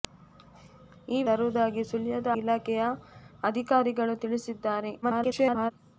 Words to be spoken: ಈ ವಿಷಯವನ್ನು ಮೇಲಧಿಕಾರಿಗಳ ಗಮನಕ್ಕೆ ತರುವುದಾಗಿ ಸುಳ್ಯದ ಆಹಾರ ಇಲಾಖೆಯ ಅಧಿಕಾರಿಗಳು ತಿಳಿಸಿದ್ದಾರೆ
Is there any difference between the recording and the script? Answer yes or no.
yes